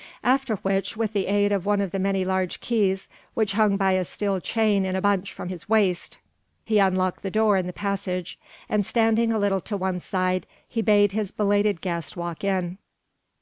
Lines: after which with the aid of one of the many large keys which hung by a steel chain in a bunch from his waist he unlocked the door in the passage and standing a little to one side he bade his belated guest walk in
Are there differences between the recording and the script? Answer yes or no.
no